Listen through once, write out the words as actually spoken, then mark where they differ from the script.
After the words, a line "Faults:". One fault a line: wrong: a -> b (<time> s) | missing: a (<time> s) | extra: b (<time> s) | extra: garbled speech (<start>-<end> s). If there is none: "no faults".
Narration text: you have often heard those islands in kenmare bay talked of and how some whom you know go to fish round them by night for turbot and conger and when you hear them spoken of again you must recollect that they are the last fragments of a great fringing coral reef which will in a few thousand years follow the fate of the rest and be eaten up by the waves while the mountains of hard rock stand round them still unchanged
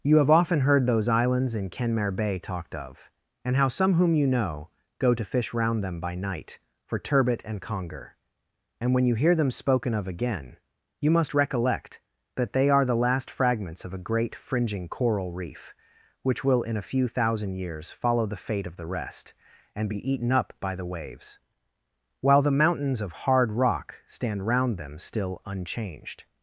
you have often heard those islands in kenmare bay talked of and how some whom you know go to fish round them by night for turbot and conger and when you hear them spoken of again you must recollect that they are the last fragments of a great fringing coral reef which will in a few thousand years follow the fate of the rest and be eaten up by the waves while the mountains of hard rock stand round them still unchanged
Faults:
no faults